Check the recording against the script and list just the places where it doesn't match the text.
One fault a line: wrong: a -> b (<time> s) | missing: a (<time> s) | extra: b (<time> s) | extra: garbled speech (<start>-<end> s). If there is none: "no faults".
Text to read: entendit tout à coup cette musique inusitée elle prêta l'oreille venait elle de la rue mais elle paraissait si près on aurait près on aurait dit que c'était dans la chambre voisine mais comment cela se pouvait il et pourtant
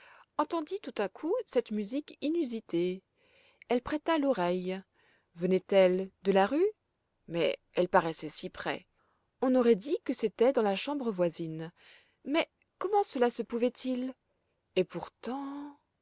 missing: près on aurait (9.7 s)